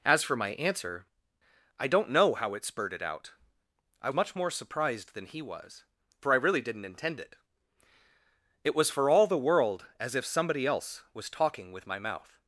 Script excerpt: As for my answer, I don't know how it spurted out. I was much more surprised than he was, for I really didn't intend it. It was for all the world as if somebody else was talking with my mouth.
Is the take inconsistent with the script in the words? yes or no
yes